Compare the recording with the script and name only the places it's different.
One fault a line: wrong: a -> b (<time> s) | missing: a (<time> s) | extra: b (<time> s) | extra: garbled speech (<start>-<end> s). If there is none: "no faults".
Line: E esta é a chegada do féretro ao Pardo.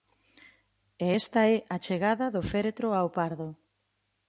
no faults